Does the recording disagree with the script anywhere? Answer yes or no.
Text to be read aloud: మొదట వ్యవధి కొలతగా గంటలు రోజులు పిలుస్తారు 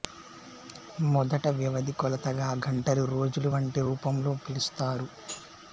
yes